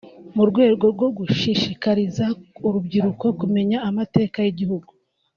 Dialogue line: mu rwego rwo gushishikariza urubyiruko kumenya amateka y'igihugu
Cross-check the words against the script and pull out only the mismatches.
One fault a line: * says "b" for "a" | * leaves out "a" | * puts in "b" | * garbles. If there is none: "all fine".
all fine